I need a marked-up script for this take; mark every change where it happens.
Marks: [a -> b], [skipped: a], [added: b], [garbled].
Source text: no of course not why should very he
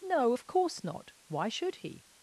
no of course not why should [skipped: very] he